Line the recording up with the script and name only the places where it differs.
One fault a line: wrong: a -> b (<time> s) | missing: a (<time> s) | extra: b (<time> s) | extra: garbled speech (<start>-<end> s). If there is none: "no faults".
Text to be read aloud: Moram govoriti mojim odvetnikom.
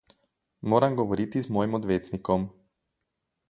extra: z (1.4 s)